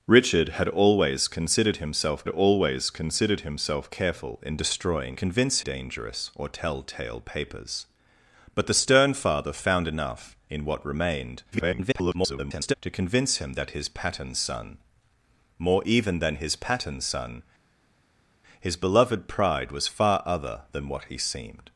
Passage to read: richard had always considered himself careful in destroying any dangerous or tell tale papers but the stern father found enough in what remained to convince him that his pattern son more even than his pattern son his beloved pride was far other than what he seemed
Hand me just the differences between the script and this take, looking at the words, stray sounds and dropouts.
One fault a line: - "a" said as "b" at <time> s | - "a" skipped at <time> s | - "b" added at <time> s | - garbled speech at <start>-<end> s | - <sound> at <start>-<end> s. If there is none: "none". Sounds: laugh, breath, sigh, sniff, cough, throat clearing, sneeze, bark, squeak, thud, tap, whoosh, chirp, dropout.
- "always considered himself" added at 2.3 s
- "any" said as "convince" at 5.1 s
- garbled speech at 11.5-12.7 s